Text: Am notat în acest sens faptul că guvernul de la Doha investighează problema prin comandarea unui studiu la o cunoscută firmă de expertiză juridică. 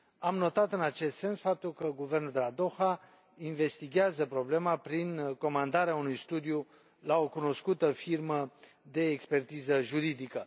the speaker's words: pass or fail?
pass